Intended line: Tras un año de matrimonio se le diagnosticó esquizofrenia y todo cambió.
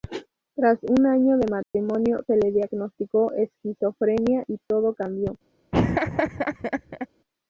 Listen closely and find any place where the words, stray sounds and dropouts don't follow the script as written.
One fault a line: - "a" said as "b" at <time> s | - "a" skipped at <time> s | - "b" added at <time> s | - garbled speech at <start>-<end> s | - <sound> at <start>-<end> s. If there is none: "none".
- dropout at 1.6-1.7 s
- laugh at 5.7-7.1 s